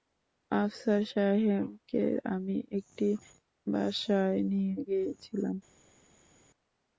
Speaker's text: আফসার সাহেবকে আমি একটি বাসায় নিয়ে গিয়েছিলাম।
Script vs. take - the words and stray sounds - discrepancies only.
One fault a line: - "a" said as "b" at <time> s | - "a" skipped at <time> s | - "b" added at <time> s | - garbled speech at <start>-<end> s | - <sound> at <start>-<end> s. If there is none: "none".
none